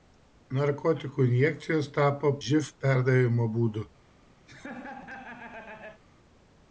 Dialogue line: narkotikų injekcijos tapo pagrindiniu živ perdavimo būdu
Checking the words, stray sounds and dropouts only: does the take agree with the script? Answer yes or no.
no